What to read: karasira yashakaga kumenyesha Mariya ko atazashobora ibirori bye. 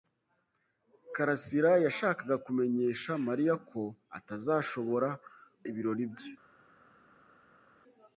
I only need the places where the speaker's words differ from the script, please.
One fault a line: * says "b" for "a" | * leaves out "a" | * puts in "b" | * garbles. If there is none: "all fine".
all fine